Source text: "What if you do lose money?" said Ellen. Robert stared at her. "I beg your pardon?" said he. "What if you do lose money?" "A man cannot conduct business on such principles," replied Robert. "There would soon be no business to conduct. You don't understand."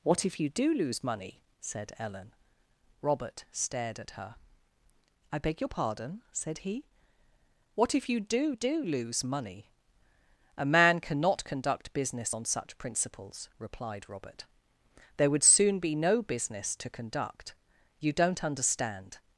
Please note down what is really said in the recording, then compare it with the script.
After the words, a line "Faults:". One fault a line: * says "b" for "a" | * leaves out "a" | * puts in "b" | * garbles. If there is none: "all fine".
"What if you do lose money?" said Ellen. Robert stared at her. "I beg your pardon?" said he. "What if you do do lose money?" "A man cannot conduct business on such principles," replied Robert. "There would soon be no business to conduct. You don't understand."
Faults:
* puts in "do"